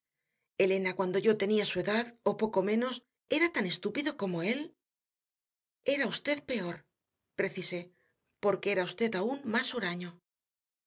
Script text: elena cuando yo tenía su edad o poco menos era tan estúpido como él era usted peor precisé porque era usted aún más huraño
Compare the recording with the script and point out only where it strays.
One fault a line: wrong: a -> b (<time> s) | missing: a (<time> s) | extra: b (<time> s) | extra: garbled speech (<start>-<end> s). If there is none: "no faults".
no faults